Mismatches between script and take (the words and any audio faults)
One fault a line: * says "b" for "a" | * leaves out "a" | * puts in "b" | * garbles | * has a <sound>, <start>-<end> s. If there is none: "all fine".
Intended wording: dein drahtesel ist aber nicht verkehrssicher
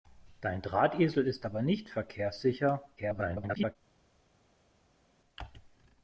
* garbles